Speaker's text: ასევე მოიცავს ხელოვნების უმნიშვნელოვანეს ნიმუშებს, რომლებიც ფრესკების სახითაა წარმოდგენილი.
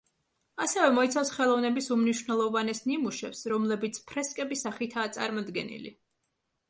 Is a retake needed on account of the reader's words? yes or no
no